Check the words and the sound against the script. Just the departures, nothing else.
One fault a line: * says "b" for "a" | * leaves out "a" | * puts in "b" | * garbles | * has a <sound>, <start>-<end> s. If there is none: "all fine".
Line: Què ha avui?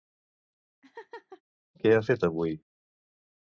* has a laugh, 0.8-1.4 s
* puts in "fet"